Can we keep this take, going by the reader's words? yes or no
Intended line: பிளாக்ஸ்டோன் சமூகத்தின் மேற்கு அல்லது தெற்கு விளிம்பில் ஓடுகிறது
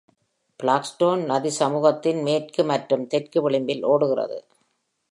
no